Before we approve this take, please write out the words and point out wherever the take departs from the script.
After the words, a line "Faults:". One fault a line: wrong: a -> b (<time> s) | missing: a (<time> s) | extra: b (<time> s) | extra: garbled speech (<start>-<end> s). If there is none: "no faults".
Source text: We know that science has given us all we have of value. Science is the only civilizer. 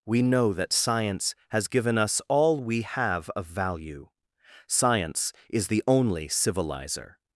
We know that science has given us all we have of value. Science is the only civilizer.
Faults:
no faults